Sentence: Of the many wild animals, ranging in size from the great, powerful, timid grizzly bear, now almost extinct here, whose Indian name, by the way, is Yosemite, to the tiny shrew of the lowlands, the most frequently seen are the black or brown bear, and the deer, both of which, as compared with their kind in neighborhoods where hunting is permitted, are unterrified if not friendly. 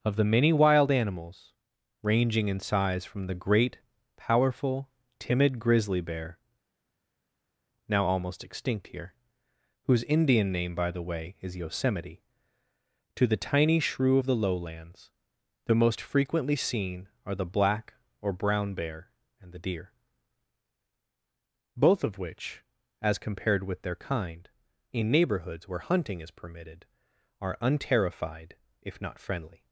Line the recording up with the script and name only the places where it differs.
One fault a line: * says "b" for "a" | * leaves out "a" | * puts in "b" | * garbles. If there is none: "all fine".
all fine